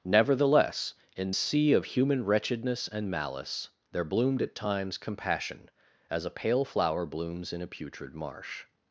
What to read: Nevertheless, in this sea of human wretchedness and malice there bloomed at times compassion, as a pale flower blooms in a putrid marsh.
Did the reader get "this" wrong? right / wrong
wrong